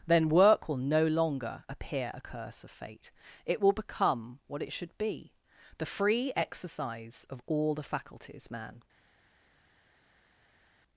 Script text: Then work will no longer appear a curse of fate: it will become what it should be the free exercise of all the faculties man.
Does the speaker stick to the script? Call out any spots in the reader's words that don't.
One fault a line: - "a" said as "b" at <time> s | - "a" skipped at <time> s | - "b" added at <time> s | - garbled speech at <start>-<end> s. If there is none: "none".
none